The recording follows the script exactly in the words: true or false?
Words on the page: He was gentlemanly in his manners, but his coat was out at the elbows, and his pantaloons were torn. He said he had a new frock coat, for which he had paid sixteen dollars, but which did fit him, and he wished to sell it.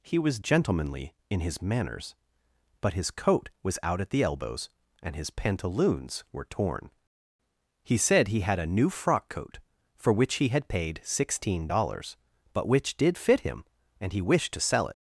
true